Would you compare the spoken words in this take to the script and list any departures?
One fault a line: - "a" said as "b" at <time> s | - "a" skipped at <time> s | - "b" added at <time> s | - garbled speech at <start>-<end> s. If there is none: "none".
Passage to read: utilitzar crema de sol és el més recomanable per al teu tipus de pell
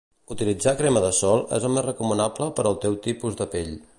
none